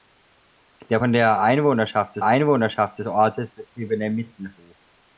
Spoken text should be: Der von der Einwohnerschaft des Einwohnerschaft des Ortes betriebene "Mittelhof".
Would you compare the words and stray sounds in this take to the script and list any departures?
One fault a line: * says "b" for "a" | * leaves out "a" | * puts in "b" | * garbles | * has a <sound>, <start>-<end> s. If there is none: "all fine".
all fine